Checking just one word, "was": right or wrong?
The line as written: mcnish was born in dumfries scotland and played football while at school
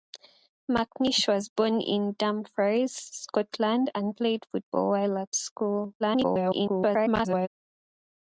right